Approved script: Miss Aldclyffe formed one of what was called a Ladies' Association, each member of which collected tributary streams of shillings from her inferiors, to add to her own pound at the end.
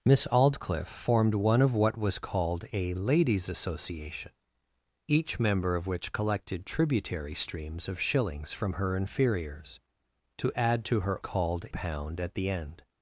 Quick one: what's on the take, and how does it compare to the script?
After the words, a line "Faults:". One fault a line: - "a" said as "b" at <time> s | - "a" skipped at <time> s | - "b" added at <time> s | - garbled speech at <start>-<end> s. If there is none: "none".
Miss Aldclyffe formed one of what was called a Ladies' Association, each member of which collected tributary streams of shillings from her inferiors, to add to her called pound at the end.
Faults:
- "own" said as "called" at 11.2 s